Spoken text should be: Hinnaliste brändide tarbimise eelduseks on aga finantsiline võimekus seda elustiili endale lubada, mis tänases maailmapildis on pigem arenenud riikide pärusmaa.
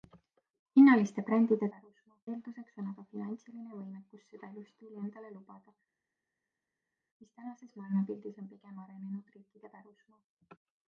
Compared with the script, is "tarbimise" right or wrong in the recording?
wrong